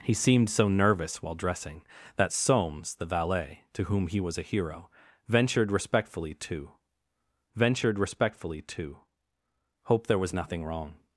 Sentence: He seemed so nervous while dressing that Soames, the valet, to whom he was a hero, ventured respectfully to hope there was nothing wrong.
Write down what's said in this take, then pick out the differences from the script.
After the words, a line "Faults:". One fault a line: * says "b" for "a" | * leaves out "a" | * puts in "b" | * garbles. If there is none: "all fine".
He seemed so nervous while dressing that Soames, the valet, to whom he was a hero, ventured respectfully to ventured respectfully to hope there was nothing wrong.
Faults:
* puts in "ventured respectfully to"